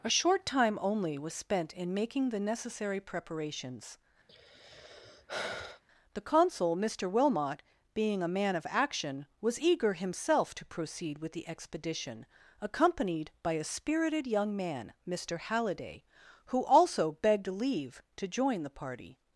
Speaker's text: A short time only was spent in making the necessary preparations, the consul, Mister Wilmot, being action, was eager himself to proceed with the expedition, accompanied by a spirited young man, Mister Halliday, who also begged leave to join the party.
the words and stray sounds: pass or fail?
fail